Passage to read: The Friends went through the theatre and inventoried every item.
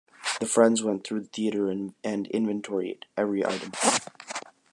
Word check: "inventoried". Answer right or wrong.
right